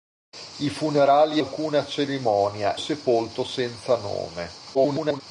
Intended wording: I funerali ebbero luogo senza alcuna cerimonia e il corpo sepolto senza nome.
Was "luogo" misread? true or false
true